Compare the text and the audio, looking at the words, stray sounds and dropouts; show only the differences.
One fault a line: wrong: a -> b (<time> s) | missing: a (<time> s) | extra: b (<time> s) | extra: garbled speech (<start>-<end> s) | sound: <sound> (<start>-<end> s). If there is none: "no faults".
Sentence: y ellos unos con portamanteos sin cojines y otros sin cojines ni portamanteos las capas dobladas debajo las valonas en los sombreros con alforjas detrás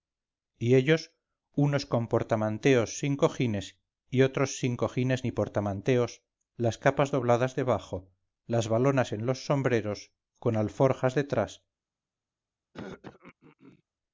sound: throat clearing (12.7-13.8 s)